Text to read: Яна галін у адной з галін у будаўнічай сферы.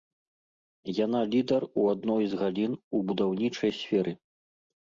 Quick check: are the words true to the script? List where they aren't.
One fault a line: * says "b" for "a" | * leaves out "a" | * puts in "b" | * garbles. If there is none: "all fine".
* says "лідар" for "галін"